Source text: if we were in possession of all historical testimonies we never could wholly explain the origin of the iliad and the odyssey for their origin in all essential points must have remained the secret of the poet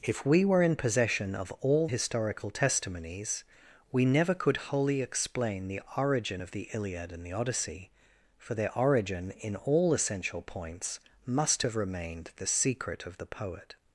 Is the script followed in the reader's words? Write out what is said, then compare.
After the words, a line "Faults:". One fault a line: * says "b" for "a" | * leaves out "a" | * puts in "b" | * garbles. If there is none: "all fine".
if we were in possession of all historical testimonies we never could wholly explain the origin of the iliad and the odyssey for their origin in all essential points must have remained the secret of the poet
Faults:
all fine